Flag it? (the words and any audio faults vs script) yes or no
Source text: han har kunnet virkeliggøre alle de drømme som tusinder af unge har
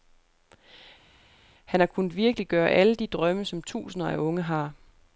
no